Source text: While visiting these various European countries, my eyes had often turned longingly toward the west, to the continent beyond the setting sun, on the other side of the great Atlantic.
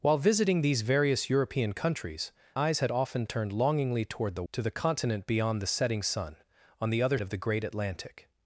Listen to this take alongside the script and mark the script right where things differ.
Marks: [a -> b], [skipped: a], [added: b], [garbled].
While visiting these various European countries, [skipped: my] eyes had often turned longingly toward the [skipped: west,] to the continent beyond the setting sun, on the other [skipped: side] of the great Atlantic.